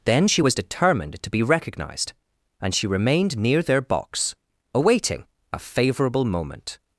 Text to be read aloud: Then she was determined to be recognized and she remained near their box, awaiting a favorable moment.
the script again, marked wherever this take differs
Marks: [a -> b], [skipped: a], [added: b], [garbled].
Then she was determined to be recognized and she remained near their box, awaiting a favorable moment.